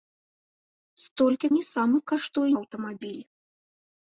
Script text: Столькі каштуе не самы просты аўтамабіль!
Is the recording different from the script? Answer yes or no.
yes